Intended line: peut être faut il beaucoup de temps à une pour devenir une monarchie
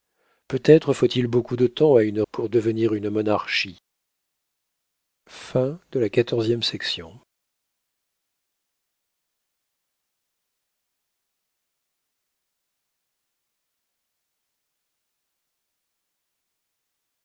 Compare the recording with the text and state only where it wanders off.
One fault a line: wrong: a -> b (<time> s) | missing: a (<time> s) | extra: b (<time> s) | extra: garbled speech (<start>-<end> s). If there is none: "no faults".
no faults